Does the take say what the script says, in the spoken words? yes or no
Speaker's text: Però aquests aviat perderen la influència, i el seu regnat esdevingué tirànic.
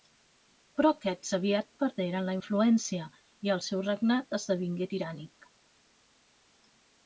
yes